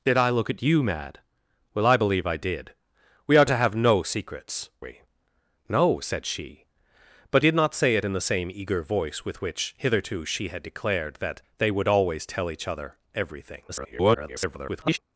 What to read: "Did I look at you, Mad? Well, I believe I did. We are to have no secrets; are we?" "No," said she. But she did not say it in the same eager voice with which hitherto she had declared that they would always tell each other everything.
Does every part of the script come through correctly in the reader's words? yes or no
no